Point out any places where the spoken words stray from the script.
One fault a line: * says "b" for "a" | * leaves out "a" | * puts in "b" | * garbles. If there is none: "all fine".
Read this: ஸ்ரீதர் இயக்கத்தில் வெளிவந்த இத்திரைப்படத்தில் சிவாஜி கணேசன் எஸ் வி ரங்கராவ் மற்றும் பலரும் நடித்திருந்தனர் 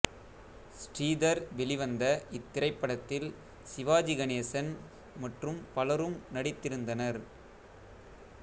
* leaves out "இயக்கத்தில்"
* leaves out "எஸ் வி ரங்கராவ்"